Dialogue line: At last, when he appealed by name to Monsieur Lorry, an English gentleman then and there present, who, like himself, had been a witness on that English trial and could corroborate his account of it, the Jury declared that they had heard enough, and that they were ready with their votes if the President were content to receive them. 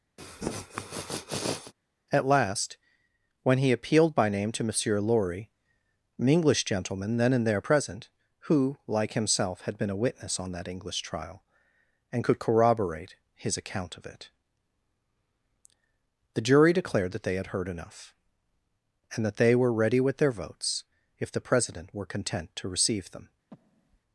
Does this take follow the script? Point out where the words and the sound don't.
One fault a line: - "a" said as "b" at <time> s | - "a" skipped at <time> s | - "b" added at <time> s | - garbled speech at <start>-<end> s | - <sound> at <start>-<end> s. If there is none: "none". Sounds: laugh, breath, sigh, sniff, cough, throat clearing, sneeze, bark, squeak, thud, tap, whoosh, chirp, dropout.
- sniff at 0.2-1.7 s
- breath at 23.5-24.0 s